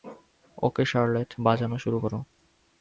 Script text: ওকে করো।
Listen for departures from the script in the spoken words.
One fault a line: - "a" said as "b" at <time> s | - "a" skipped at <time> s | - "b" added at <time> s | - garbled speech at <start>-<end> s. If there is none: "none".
- "শার্লেট বাজানো শুরু" added at 0.8 s